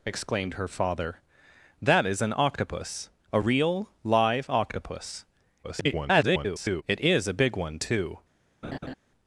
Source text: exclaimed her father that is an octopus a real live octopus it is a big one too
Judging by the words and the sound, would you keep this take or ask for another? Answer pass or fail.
fail